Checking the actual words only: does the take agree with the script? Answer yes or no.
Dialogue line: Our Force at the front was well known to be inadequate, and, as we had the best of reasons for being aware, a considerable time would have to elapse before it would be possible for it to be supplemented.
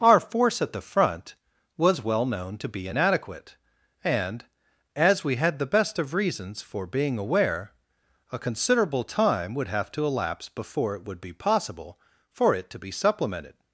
yes